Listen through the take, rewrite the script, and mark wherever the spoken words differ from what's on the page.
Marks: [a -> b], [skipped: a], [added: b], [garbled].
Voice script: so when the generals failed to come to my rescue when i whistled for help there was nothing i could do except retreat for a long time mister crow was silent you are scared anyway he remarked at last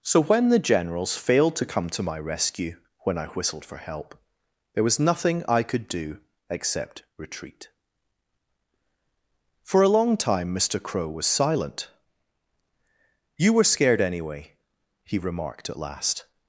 so when the generals failed to come to my rescue when i whistled for help there was nothing i could do except retreat for a long time mister crow was silent you [are -> were] scared anyway he remarked at last